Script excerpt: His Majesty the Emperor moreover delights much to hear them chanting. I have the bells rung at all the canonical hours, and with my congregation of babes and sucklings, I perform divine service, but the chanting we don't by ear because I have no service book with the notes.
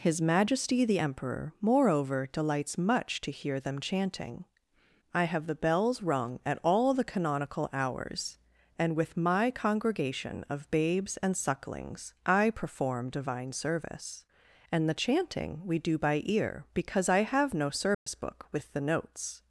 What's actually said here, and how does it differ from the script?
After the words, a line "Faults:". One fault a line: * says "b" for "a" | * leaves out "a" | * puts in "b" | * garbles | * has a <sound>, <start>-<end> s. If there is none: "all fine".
His Majesty the Emperor moreover delights much to hear them chanting. I have the bells rung at all the canonical hours, and with my congregation of babes and sucklings, I perform divine service, and the chanting we do by ear because I have no service book with the notes.
Faults:
* says "and" for "but"
* says "do" for "don't"
* has a dropout, 17.9-18.1 s